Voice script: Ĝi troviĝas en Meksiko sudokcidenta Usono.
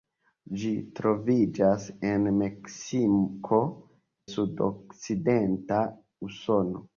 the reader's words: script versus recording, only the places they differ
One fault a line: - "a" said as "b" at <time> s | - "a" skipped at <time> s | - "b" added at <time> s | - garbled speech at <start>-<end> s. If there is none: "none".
none